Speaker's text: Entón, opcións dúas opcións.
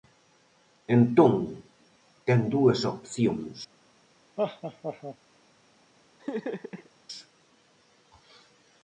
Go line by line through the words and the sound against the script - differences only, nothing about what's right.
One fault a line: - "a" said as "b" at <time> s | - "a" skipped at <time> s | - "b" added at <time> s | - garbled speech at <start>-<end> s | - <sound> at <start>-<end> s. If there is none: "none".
- "opcións" said as "ten" at 2.2 s
- laugh at 4.4-5.2 s
- laugh at 6.2-6.9 s